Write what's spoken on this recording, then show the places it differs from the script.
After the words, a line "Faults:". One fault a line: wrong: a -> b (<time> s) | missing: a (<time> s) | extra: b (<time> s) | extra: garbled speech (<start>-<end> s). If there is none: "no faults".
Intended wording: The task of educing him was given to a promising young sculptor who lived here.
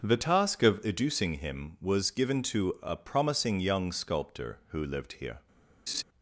The task of educing him was given to a promising young sculptor who lived here.
Faults:
no faults